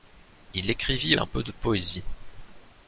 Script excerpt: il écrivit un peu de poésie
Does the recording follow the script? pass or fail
pass